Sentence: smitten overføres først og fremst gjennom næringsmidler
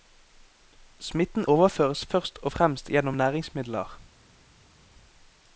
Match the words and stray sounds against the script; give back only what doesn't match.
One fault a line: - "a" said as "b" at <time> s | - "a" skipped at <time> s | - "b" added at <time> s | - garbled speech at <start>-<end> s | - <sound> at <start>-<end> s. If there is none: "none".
none